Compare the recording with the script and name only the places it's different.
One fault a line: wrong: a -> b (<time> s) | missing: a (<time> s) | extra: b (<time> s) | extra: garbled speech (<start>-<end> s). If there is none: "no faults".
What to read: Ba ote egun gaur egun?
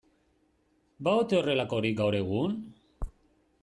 wrong: egun -> horrelakorik (1.4 s)